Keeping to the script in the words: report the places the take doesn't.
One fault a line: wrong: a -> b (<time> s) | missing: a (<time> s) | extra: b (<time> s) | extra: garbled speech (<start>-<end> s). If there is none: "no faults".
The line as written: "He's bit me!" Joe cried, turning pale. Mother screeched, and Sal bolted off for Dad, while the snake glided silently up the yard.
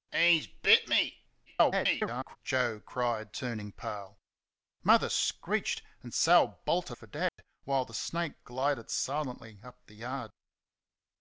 extra: garbled speech (1.5-2.4 s)
missing: off (7.0 s)